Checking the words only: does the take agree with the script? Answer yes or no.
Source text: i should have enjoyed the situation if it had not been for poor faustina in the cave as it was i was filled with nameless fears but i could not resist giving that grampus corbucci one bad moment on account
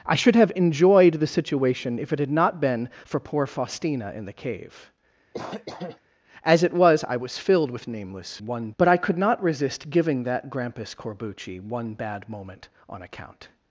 no